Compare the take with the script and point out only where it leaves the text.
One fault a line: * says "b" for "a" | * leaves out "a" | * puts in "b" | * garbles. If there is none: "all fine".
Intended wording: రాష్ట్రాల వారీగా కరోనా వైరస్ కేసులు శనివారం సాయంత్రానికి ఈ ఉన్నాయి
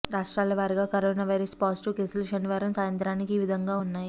* puts in "పాజిటివ్"
* puts in "విధంగా"